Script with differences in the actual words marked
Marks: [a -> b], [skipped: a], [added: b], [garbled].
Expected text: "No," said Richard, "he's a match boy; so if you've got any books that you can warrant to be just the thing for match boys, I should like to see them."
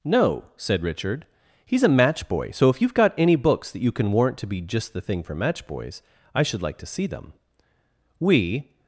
"No," said Richard, "he's a match boy; so if you've got any books that you can warrant to be just the thing for match boys, I should like to see them." [added: We]